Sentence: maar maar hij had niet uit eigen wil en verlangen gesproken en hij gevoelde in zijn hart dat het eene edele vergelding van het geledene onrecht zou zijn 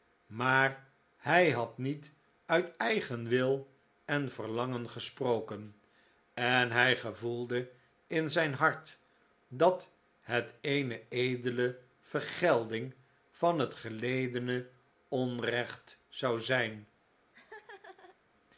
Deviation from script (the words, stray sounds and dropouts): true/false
true